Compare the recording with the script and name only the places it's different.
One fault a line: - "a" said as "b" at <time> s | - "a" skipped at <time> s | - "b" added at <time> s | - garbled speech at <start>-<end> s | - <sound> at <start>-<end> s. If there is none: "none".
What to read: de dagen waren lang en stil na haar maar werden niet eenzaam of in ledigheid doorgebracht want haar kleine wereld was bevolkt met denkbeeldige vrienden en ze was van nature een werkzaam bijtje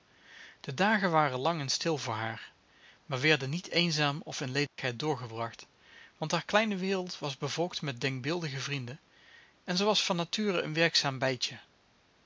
- "na" said as "voor" at 2.0 s
- dropout at 4.7-4.8 s